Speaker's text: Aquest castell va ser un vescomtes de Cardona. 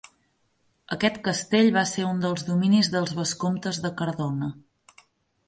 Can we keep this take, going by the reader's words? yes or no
no